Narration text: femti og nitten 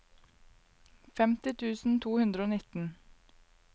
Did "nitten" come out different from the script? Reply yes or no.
no